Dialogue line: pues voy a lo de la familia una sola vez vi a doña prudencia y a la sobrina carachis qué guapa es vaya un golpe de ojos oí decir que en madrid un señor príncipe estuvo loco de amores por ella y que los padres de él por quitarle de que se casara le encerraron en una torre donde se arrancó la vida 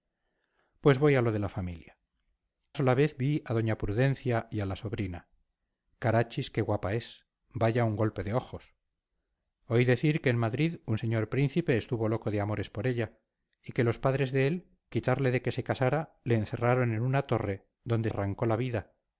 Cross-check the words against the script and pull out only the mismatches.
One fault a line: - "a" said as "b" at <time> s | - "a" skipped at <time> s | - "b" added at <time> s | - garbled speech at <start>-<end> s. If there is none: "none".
- "una" skipped at 2.0 s
- "por" skipped at 14.7 s
- "se" skipped at 18.1 s